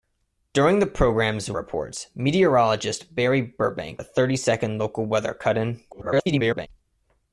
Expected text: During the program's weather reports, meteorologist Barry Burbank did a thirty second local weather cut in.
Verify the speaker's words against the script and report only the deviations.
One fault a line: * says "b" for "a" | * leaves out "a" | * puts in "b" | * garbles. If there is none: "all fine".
* leaves out "weather"
* leaves out "did"
* garbles